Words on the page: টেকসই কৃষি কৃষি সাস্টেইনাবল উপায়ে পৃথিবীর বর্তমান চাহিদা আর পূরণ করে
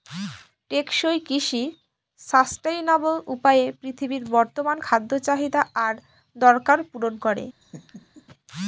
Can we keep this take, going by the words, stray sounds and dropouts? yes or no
no